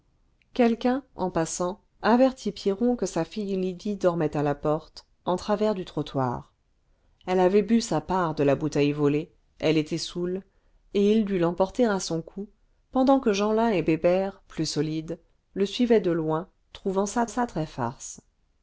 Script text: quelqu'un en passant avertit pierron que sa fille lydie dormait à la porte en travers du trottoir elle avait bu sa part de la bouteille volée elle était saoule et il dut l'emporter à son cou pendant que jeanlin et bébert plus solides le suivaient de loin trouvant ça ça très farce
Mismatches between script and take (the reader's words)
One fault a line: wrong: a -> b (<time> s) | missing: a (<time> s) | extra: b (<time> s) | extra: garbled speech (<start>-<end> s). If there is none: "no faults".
no faults